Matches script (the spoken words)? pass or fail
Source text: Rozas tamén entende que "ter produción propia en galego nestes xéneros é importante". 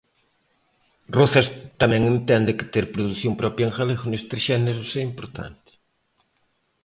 pass